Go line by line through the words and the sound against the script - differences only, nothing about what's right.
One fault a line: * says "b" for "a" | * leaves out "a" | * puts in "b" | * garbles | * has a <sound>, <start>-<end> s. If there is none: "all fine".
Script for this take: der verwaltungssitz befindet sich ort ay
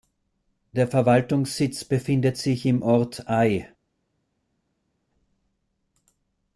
* puts in "im"